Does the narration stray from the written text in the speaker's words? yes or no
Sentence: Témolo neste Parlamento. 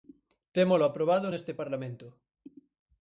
yes